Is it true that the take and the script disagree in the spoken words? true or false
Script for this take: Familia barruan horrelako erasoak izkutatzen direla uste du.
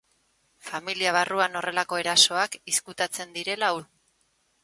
true